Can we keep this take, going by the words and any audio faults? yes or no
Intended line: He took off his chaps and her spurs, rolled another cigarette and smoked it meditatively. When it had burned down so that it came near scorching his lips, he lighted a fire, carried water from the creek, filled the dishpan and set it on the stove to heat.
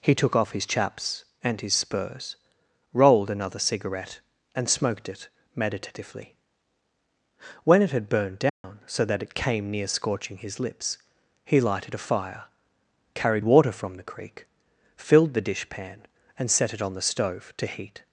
no